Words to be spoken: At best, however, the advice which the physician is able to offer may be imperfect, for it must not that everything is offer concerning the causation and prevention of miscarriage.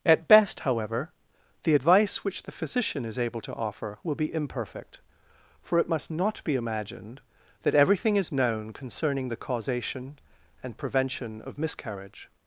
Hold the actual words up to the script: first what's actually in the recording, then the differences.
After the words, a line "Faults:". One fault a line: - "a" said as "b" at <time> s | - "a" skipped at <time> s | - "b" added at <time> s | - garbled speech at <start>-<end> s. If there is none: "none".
At best, however, the advice which the physician is able to offer will be imperfect, for it must not be imagined that everything is known concerning the causation and prevention of miscarriage.
Faults:
- "may" said as "will" at 4.0 s
- "be imagined" added at 6.4 s
- "offer" said as "known" at 8.3 s